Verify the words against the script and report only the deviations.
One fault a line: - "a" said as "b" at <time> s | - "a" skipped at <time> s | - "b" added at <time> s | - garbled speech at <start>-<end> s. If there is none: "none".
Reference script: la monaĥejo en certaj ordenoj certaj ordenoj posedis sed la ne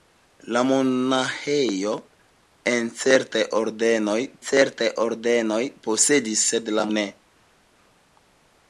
none